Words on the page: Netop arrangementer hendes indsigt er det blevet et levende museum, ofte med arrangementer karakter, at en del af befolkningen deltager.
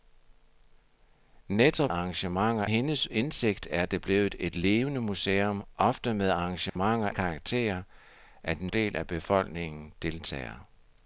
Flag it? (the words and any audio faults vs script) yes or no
yes